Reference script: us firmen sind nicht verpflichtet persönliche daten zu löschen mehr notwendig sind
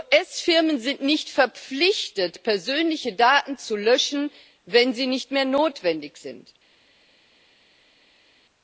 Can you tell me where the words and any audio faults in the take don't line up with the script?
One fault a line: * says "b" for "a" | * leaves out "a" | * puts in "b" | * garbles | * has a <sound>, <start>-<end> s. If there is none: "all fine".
* puts in "wenn sie nicht"